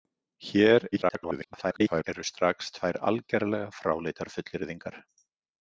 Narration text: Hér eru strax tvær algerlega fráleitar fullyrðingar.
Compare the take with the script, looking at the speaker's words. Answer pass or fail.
fail